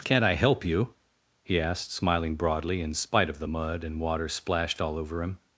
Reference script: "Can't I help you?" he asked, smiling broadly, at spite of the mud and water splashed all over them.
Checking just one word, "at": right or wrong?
wrong